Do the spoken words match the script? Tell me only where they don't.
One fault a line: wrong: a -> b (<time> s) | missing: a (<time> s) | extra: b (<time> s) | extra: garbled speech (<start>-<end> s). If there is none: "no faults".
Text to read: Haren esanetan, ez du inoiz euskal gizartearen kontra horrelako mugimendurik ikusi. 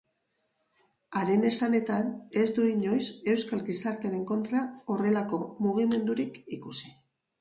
no faults